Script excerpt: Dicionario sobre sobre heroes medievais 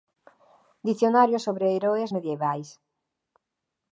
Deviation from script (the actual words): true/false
true